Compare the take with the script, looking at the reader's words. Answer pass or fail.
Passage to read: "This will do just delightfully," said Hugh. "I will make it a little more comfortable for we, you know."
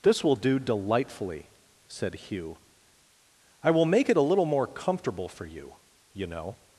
fail